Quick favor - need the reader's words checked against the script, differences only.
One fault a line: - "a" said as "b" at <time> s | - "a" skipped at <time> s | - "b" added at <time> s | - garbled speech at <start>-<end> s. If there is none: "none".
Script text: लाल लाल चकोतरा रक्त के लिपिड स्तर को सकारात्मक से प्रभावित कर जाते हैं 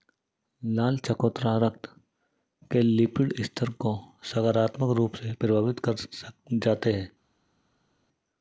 - "लाल" skipped at 1.0 s
- "रूप" added at 5.0 s